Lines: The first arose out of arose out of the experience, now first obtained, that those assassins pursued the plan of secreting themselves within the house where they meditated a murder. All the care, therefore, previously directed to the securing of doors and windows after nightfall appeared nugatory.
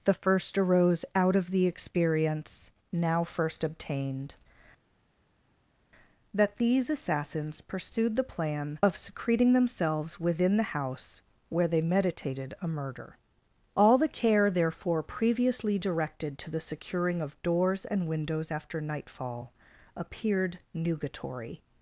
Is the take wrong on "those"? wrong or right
wrong